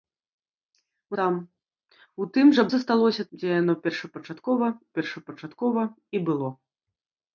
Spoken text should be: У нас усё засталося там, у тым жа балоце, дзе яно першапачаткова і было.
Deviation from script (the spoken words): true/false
true